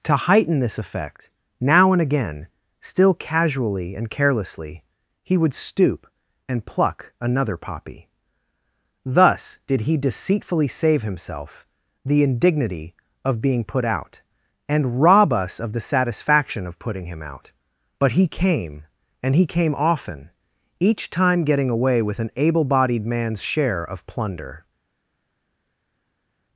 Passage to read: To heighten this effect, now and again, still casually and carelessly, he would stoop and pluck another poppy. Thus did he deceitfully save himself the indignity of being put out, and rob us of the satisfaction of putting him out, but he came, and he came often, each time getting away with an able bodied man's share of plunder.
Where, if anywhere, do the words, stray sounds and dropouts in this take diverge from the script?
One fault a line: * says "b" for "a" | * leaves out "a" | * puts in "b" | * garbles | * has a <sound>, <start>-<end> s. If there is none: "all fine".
all fine